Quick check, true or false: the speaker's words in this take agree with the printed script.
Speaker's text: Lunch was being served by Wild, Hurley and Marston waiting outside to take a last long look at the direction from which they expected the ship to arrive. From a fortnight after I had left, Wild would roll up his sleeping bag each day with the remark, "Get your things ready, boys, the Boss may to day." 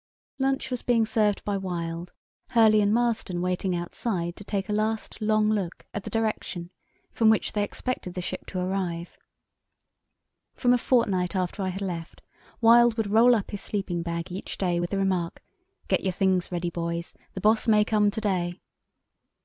false